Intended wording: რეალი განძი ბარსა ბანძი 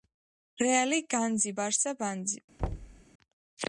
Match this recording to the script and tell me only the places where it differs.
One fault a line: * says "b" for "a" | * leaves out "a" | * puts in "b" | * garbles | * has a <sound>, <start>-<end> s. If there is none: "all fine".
* has a thud, 2.6-3.0 s